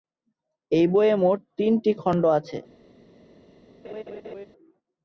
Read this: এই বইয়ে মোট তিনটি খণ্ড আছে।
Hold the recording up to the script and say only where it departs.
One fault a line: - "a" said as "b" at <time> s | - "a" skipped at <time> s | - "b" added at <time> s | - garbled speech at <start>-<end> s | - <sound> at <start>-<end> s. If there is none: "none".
- laugh at 3.8-4.5 s